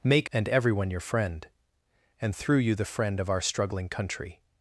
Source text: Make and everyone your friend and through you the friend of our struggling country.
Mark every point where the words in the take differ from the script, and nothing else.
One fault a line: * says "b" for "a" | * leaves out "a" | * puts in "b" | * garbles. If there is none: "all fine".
all fine